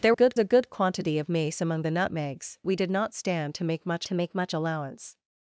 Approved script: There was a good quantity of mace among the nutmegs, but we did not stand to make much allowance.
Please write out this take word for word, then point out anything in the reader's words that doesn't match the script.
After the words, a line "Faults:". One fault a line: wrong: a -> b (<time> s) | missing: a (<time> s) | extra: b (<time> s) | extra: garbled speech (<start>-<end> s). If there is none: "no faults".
There good a good quantity of mace among the nutmegs, we did not stand to make much to make much allowance.
Faults:
wrong: was -> good (0.1 s)
missing: but (2.6 s)
extra: to make much (4.1 s)